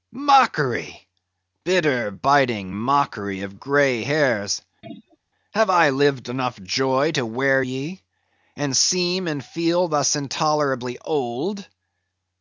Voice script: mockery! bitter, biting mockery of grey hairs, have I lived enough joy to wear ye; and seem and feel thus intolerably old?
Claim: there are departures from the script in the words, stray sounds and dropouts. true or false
true